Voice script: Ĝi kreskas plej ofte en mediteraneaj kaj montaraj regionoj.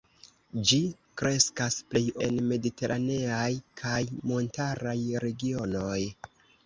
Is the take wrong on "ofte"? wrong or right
wrong